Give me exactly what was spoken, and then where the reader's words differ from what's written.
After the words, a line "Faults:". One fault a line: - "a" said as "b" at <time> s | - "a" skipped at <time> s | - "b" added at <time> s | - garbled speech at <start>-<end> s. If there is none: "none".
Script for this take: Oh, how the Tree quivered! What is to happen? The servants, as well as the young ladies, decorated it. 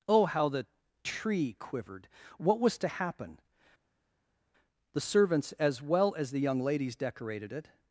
Oh, how the Tree quivered! What was to happen? The servants, as well as the young ladies, decorated it.
Faults:
- "is" said as "was" at 2.6 s